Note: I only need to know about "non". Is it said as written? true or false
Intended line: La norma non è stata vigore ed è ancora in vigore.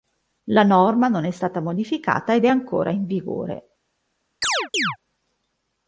true